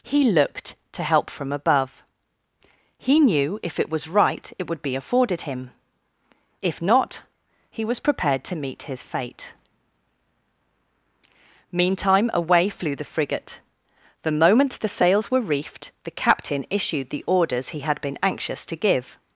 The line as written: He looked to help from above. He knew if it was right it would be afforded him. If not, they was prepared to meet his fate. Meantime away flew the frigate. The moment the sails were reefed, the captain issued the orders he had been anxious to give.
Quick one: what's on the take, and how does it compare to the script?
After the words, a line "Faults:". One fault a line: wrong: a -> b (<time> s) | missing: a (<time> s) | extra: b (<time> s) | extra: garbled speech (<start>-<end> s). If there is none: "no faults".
He looked to help from above. He knew if it was right it would be afforded him. If not, he was prepared to meet his fate. Meantime away flew the frigate. The moment the sails were reefed, the captain issued the orders he had been anxious to give.
Faults:
wrong: they -> he (7.7 s)